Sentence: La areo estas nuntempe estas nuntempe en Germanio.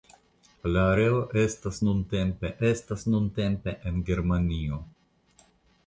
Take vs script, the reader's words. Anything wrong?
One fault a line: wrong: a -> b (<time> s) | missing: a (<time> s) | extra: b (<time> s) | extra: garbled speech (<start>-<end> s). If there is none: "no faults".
no faults